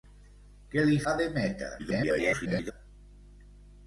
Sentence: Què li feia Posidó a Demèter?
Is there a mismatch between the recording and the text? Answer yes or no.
yes